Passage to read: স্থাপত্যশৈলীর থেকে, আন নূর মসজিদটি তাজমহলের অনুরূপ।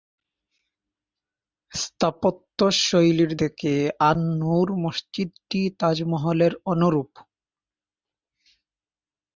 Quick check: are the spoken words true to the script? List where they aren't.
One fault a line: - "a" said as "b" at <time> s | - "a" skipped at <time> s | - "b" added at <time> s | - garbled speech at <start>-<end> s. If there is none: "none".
none